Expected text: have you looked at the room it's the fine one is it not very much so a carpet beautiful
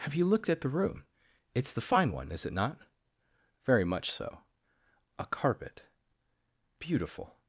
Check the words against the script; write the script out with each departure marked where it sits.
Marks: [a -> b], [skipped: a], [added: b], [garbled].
have you looked at the room it's the fine one is it not very much so a carpet beautiful